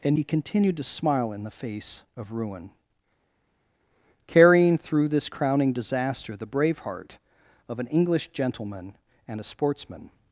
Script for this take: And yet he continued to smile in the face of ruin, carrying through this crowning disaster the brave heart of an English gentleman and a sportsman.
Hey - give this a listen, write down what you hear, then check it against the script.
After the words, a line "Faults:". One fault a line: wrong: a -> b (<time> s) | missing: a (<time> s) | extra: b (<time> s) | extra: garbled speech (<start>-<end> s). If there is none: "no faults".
And he continued to smile in the face of ruin, carrying through this crowning disaster the brave heart of an English gentleman and a sportsman.
Faults:
missing: yet (0.2 s)